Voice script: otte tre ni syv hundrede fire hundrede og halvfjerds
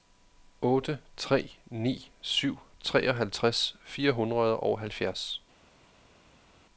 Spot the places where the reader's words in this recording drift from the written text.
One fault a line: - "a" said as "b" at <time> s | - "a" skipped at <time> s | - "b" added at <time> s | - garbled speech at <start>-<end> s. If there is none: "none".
- "hundrede" said as "treoghalvtreds" at 2.8 s